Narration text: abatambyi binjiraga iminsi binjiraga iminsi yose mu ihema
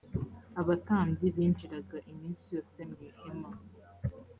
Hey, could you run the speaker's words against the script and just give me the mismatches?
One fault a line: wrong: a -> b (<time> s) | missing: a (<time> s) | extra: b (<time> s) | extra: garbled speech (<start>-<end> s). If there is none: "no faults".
missing: binjiraga iminsi (2.5 s)